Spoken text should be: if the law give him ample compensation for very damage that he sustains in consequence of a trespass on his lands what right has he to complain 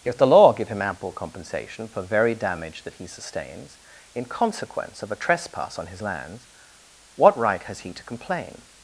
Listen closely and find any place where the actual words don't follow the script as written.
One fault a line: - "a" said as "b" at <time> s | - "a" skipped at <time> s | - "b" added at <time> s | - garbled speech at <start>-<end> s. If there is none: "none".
none